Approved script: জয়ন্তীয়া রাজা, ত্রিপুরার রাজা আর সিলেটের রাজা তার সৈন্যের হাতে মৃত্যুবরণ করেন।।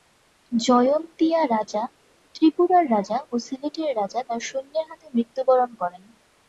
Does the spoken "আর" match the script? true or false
false